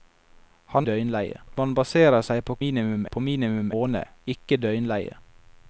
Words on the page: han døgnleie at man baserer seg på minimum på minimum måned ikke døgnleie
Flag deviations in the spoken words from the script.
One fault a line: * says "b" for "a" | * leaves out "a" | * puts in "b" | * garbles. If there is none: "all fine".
all fine